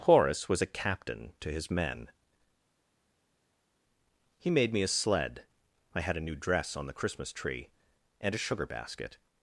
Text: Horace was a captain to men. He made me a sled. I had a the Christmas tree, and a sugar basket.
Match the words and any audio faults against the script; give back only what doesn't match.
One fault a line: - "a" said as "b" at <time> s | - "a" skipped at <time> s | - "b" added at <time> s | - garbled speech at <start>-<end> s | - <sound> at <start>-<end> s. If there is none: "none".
- "his" added at 1.5 s
- "new dress on" added at 6.2 s